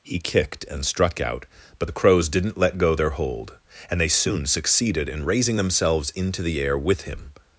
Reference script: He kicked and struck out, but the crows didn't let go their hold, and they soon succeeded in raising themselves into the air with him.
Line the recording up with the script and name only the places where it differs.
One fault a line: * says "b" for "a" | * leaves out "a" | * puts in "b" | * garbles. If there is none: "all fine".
all fine